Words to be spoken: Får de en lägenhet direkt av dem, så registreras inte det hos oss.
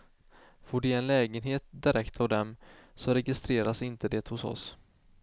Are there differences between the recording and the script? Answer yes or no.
no